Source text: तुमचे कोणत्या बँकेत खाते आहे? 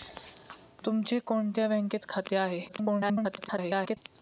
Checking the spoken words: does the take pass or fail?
fail